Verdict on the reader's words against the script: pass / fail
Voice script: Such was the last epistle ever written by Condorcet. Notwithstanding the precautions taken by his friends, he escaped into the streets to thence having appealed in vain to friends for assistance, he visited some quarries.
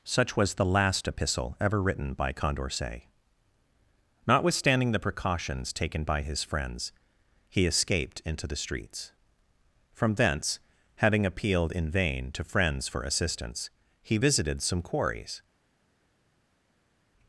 fail